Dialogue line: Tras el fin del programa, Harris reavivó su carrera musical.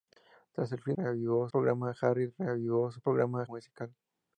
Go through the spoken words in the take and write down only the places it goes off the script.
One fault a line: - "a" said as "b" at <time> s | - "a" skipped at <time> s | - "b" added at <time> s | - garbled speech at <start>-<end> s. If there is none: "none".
- "del" said as "reavivó" at 1.0 s
- "carrera" said as "programa" at 3.0 s